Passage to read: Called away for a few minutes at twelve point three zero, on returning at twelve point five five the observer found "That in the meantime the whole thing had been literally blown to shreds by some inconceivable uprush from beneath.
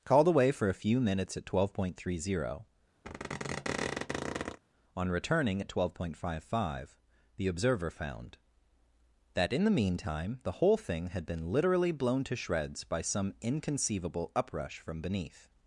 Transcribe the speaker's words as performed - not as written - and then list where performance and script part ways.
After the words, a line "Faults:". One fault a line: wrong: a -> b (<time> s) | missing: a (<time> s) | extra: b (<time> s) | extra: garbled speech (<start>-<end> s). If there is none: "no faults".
Called away for a few minutes at twelve point three zero, on returning at twelve point five five the observer found "That in the meantime the whole thing had been literally blown to shreds by some inconceivable uprush from beneath.
Faults:
no faults